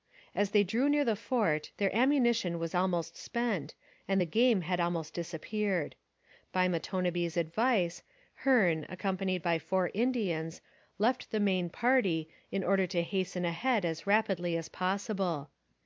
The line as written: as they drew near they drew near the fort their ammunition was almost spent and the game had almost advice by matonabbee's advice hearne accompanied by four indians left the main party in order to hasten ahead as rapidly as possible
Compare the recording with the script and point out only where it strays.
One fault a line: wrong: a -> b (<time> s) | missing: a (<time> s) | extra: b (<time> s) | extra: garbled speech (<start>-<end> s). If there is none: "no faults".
missing: they drew near (1.1 s)
wrong: advice -> disappeared (5.1 s)